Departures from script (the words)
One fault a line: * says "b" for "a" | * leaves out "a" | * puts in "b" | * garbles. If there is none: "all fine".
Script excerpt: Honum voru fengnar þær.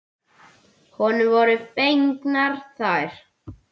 all fine